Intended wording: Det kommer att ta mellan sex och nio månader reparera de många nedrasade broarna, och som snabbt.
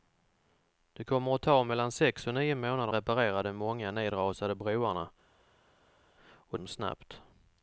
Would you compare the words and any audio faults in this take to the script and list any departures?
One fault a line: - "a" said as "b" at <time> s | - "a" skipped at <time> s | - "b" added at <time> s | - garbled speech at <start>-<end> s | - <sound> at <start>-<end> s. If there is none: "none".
none